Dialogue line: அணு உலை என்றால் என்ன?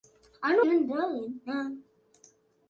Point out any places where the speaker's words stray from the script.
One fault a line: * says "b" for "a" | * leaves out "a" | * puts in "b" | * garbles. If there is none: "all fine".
* leaves out "உலை"